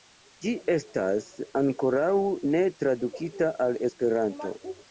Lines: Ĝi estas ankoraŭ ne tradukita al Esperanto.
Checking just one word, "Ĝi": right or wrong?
right